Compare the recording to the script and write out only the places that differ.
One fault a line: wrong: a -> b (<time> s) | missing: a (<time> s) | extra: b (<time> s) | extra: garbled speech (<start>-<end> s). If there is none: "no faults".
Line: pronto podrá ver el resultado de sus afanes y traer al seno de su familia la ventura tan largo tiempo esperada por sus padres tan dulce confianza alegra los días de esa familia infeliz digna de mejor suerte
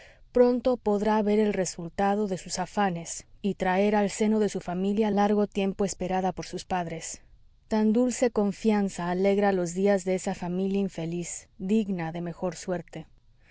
missing: la ventura tan (5.1 s)